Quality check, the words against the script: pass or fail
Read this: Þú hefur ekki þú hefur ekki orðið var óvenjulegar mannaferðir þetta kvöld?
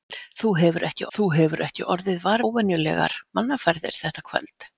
pass